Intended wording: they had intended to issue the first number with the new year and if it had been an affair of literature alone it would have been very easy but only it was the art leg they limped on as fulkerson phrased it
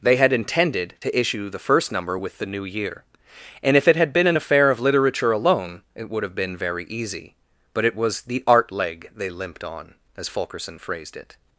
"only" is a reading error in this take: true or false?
true